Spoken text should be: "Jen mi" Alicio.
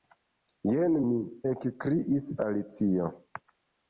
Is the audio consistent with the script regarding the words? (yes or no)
no